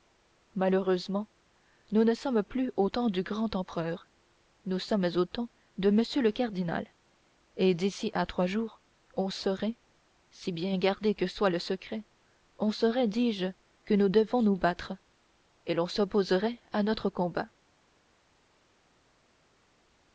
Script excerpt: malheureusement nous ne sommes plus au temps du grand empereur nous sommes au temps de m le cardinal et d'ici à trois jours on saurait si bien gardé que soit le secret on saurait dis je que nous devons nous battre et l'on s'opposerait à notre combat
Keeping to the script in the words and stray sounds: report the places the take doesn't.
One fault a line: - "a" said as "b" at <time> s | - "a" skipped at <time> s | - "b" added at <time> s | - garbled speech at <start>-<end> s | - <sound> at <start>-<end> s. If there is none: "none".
none